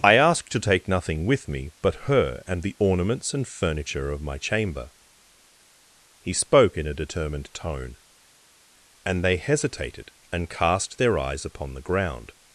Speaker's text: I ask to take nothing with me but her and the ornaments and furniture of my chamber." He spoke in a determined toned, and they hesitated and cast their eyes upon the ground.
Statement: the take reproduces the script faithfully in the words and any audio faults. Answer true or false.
false